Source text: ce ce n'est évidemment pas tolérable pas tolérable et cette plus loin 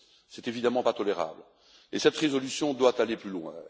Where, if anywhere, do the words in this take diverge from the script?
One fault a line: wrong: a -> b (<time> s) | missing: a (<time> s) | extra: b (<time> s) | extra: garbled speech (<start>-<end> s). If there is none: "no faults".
missing: ce (0.4 s)
wrong: pas tolérable et cette -> et cette résolution doit aller (1.9 s)